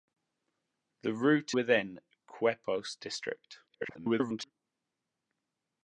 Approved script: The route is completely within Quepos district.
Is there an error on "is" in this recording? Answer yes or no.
yes